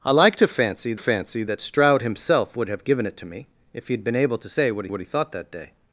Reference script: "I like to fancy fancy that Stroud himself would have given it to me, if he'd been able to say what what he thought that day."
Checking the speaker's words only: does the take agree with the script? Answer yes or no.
yes